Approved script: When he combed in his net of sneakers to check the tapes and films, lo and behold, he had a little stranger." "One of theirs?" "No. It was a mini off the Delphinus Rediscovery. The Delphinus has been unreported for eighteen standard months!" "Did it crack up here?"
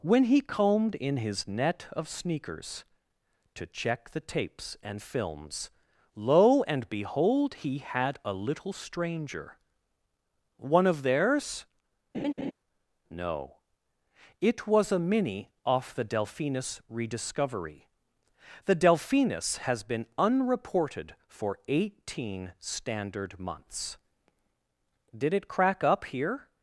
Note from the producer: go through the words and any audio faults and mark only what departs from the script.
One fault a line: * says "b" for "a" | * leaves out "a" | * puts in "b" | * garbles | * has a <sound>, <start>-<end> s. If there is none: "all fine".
* has a laugh, 12.1-12.5 s